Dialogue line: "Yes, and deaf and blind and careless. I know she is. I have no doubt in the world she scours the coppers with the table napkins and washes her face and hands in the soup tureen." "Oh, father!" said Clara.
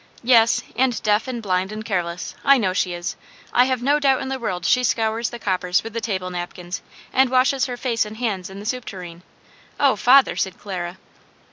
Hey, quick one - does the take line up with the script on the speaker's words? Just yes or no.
yes